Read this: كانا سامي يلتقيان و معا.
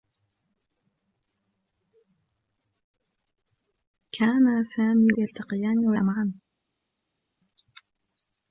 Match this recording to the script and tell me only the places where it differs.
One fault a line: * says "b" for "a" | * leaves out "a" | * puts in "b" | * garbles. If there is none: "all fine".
all fine